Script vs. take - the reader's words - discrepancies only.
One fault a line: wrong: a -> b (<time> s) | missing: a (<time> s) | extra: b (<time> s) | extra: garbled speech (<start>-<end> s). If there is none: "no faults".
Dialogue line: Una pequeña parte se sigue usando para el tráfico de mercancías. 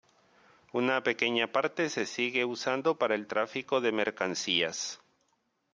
no faults